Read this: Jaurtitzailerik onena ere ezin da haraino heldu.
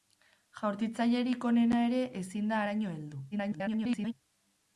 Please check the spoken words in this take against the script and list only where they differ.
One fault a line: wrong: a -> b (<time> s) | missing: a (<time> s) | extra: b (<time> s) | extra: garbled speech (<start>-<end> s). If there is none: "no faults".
extra: garbled speech (3.3-4.1 s)